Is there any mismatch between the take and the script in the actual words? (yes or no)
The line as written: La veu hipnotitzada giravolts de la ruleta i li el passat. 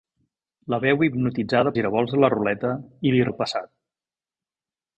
no